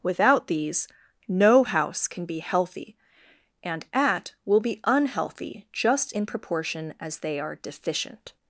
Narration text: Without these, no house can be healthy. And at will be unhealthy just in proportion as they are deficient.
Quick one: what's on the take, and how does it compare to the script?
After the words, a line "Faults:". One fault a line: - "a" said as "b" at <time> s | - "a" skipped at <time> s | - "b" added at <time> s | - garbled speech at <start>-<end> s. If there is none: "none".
Without these, no house can be healthy. And at will be unhealthy just in proportion as they are deficient.
Faults:
none